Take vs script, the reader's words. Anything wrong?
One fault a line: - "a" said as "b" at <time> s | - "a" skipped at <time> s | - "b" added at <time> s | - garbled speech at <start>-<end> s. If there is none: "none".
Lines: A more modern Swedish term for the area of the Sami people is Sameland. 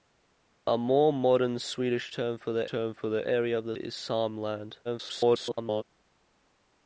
- "term for the" added at 2.7 s
- "Sami people" skipped at 3.8 s
- garbled speech at 4.8-5.8 s